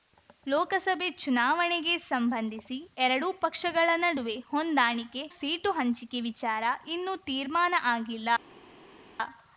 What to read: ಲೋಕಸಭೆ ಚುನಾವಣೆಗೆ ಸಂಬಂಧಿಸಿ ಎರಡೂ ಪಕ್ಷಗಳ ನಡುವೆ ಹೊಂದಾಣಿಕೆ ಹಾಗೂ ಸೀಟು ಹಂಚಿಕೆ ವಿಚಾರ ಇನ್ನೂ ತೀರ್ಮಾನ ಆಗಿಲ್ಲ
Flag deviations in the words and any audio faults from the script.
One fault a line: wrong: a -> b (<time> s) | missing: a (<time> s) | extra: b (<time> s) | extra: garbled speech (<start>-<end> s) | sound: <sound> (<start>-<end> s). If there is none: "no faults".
missing: ಹಾಗೂ (5.2 s)